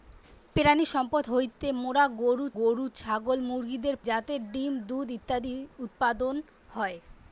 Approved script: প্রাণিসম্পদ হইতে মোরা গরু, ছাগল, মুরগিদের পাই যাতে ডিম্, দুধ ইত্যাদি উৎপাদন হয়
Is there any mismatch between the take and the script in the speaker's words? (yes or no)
yes